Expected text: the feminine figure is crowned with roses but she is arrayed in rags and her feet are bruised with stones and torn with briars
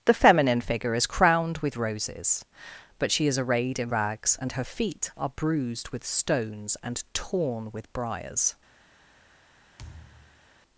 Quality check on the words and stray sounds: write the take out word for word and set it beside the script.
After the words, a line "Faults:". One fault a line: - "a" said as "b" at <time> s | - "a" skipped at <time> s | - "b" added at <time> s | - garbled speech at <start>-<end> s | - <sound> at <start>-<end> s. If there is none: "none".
the feminine figure is crowned with roses but she is arrayed in rags and her feet are bruised with stones and torn with briars
Faults:
- thud at 9.8-10.5 s